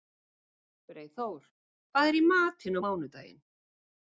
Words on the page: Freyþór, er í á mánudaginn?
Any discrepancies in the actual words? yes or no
yes